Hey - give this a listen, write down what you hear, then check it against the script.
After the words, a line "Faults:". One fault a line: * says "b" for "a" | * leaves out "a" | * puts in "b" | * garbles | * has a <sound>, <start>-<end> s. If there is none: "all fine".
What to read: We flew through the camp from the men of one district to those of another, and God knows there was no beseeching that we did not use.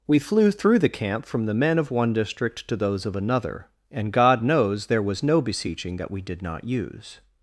We flew through the camp from the men of one district to those of another, and God knows there was no beseeching that we did not use.
Faults:
all fine